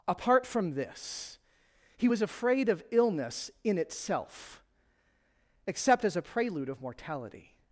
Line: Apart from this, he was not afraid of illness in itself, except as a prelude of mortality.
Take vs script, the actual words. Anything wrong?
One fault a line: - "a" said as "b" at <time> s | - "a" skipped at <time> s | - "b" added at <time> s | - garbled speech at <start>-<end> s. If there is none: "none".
- "not" skipped at 2.2 s